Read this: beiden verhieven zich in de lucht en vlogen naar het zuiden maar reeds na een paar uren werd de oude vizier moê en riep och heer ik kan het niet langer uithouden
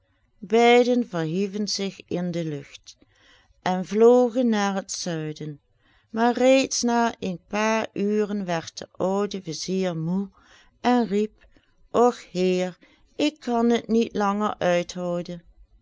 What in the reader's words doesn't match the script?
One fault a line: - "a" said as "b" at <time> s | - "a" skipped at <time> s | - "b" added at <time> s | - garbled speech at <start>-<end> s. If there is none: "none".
none